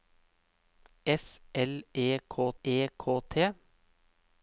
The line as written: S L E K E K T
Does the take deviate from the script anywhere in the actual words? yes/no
no